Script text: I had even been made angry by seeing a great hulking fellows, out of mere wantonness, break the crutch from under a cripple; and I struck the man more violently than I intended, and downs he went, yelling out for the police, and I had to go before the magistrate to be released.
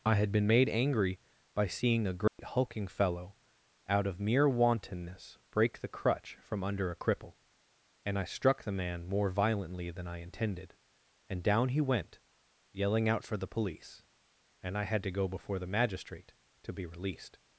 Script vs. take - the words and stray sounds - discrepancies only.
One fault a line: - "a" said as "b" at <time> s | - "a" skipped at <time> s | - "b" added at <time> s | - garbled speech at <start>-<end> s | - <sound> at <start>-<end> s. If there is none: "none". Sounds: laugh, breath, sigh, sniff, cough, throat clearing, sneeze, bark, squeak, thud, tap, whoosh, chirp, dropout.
- "even" skipped at 0.3 s
- dropout at 2.3-2.4 s
- "fellows" said as "fellow" at 2.9 s
- "downs" said as "down" at 11.4 s